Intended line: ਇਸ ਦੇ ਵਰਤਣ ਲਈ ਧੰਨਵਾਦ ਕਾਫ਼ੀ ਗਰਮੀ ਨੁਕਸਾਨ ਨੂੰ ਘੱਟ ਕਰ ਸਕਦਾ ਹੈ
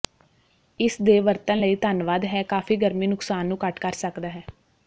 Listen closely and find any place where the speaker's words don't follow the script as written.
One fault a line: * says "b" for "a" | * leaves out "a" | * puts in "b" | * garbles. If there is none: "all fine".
* puts in "ਹੈ"